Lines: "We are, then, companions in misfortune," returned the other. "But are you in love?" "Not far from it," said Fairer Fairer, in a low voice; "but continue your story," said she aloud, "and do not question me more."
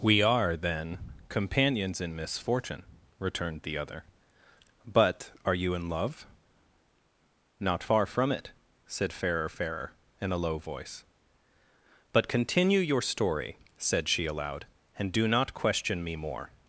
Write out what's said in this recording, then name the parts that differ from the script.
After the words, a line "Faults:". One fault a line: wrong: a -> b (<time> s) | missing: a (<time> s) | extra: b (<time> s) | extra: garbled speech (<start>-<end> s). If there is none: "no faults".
"We are, then, companions in misfortune," returned the other. "But are you in love?" "Not far from it," said Fairer Fairer, in a low voice; "but continue your story," said she aloud, "and do not question me more."
Faults:
no faults